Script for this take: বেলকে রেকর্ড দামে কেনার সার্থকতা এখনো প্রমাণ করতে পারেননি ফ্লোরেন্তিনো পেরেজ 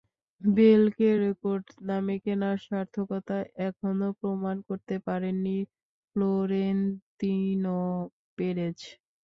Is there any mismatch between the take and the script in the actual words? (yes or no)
no